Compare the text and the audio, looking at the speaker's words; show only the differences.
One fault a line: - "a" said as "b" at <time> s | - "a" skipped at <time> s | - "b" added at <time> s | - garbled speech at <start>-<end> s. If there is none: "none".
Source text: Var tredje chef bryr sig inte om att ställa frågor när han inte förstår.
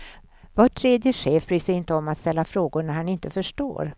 none